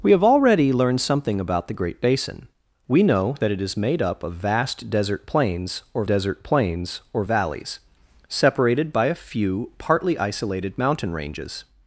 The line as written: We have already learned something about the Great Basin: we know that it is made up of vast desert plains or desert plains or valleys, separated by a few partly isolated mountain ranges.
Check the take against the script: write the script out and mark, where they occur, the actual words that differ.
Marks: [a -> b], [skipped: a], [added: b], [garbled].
We have already learned something about the Great Basin: we know that it is made up of vast desert plains or desert plains or valleys, separated by a few partly isolated mountain ranges.